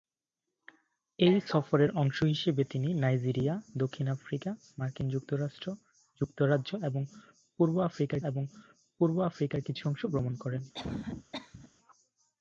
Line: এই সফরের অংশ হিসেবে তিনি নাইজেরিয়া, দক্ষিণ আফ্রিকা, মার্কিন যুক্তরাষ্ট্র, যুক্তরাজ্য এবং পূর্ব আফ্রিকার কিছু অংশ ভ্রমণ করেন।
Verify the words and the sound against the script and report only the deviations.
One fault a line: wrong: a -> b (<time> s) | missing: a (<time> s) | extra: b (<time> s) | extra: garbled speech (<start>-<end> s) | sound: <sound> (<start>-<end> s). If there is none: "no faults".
extra: এবং পূর্ব আফ্রিকার (8.3 s)
sound: cough (10.7-11.7 s)